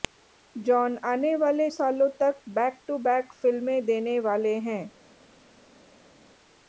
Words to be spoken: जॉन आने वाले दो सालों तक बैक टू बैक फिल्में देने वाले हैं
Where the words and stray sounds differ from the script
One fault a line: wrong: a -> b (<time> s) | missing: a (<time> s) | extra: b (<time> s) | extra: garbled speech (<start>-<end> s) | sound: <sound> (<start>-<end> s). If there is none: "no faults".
missing: दो (1.7 s)